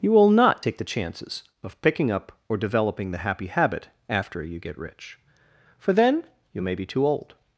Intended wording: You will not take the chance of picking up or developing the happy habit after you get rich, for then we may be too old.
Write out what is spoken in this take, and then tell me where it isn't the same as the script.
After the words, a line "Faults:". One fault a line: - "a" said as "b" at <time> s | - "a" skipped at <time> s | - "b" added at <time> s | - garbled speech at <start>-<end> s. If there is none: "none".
You will not take the chances of picking up or developing the happy habit after you get rich, for then you may be too old.
Faults:
- "chance" said as "chances" at 0.8 s
- "we" said as "you" at 6.5 s